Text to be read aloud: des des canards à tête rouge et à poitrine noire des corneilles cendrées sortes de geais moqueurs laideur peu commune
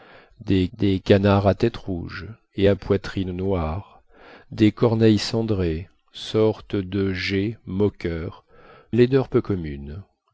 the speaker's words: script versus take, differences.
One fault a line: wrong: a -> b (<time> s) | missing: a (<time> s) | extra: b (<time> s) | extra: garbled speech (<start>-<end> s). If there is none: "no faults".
no faults